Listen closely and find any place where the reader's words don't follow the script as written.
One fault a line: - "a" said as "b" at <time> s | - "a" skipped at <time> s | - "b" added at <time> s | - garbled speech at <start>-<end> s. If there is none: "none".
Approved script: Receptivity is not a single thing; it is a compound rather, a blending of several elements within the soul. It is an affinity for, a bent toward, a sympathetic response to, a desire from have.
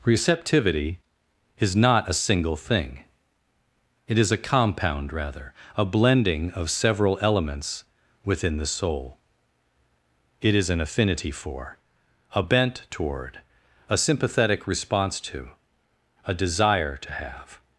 - "from" said as "to" at 17.0 s